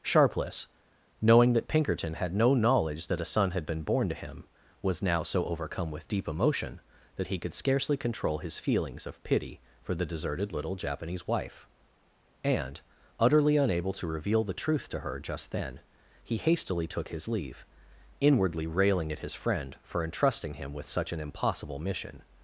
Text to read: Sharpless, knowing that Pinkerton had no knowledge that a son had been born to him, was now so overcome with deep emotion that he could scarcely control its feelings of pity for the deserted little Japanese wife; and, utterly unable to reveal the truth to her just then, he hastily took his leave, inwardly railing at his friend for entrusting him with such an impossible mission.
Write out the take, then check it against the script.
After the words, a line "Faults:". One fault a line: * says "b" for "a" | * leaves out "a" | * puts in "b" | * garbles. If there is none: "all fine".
Sharpless, knowing that Pinkerton had no knowledge that a son had been born to him, was now so overcome with deep emotion that he could scarcely control his feelings of pity for the deserted little Japanese wife; and, utterly unable to reveal the truth to her just then, he hastily took his leave, inwardly railing at his friend for entrusting him with such an impossible mission.
Faults:
* says "his" for "its"